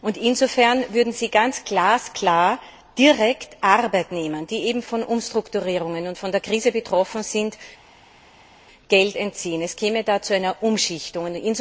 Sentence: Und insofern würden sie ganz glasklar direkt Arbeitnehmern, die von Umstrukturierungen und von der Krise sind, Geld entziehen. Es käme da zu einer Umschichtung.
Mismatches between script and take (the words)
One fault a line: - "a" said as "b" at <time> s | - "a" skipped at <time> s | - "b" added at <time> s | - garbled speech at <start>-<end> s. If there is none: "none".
- "betroffen" added at 6.7 s